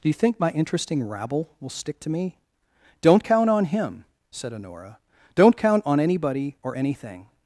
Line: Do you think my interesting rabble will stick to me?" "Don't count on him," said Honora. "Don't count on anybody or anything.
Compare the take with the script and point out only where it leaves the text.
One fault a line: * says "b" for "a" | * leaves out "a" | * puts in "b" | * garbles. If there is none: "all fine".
all fine